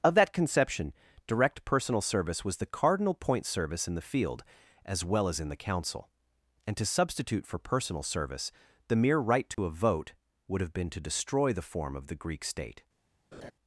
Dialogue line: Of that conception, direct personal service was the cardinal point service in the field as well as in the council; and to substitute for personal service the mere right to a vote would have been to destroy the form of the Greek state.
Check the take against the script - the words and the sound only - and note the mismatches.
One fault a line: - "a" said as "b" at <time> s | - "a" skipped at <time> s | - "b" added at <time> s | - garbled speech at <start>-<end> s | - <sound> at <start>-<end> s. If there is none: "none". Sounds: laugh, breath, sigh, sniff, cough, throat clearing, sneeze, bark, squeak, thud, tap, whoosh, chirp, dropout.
- dropout at 9.5-9.6 s
- laugh at 13.3-13.5 s